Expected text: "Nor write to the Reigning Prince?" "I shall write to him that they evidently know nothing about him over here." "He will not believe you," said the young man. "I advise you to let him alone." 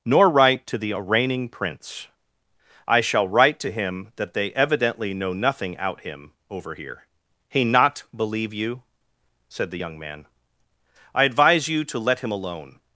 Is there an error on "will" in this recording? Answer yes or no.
yes